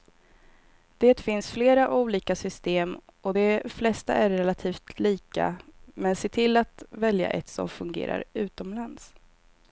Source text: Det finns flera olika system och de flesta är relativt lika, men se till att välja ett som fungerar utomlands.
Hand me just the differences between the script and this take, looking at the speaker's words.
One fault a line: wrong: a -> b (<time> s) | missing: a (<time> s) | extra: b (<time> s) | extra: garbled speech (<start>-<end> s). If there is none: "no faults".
no faults